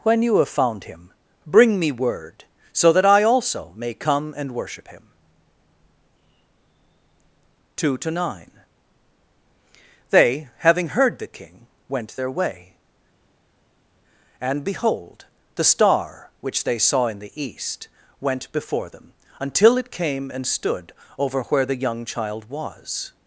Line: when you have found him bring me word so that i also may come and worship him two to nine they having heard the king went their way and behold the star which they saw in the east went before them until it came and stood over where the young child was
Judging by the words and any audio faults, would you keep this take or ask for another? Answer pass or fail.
pass